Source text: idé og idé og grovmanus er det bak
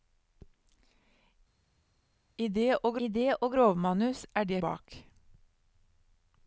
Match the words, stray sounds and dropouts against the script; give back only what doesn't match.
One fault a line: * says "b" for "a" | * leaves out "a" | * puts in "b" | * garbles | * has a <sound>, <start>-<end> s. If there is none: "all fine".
all fine